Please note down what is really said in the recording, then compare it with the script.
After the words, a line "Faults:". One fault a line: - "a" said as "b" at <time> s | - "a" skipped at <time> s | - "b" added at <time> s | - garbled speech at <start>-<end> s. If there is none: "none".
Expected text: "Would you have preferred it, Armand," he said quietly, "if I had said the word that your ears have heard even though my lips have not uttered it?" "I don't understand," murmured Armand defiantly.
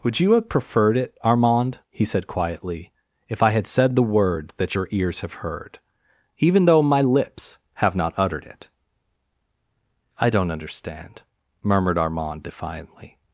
"Would you have preferred it, Armand," he said quietly, "if I had said the word that your ears have heard even though my lips have not uttered it?" "I don't understand," murmured Armand defiantly.
Faults:
none